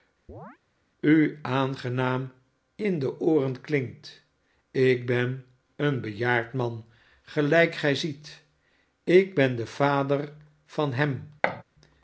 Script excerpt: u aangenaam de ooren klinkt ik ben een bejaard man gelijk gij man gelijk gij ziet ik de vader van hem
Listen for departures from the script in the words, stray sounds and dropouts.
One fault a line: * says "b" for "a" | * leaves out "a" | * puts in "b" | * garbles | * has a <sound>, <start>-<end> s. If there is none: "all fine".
* has a chirp, 0.3-0.6 s
* puts in "in"
* leaves out "man gelijk gij"
* puts in "ben"
* has a thud, 11.4-11.6 s